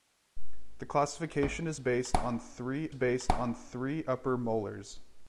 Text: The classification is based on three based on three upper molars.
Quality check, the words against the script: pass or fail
pass